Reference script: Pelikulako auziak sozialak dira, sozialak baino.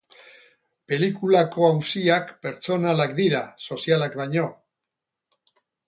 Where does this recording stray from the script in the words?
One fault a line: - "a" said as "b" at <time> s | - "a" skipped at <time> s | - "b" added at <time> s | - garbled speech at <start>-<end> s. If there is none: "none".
- "sozialak" said as "pertsonalak" at 2.5 s